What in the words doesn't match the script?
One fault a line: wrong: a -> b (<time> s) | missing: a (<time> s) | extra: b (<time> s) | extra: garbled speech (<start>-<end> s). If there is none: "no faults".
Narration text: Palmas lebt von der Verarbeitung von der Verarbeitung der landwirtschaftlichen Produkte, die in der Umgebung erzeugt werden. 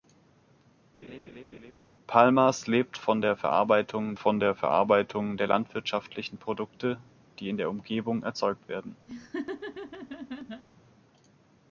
no faults